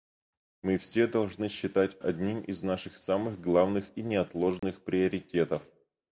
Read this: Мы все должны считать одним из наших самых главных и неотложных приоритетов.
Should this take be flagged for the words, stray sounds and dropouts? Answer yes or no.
yes